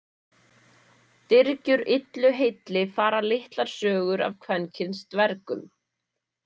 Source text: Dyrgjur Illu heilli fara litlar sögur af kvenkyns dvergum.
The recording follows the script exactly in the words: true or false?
true